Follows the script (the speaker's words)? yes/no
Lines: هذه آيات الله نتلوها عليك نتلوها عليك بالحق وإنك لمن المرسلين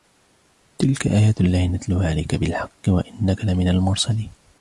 no